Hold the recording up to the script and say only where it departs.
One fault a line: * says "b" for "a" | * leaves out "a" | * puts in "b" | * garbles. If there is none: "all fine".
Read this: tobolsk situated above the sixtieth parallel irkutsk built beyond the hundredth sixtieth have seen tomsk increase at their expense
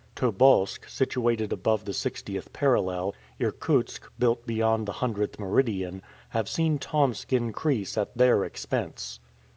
* says "meridian" for "sixtieth"